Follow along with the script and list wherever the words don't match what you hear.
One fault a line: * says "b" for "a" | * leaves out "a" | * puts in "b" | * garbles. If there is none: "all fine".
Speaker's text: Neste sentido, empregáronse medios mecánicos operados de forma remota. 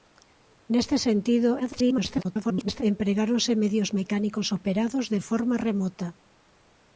* garbles